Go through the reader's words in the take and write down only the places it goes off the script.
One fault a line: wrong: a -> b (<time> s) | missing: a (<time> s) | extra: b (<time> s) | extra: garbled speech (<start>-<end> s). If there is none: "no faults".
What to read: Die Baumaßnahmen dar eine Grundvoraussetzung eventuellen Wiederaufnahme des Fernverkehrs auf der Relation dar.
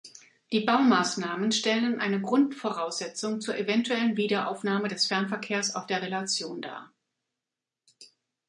wrong: dar -> stellen (1.5 s)
extra: zur (3.4 s)